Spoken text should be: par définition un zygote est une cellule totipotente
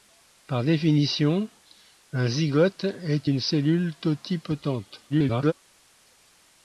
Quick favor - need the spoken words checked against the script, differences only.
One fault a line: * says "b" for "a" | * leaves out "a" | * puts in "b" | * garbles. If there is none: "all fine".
* garbles